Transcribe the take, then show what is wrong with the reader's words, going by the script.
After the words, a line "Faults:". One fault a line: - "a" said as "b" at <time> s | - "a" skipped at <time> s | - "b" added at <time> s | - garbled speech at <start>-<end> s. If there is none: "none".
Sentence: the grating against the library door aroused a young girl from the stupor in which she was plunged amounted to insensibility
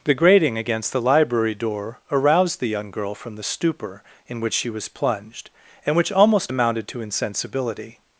the grating against the library door aroused the young girl from the stupor in which she was plunged and which almost amounted to insensibility
Faults:
- "a" said as "the" at 2.6 s
- "and which almost" added at 5.8 s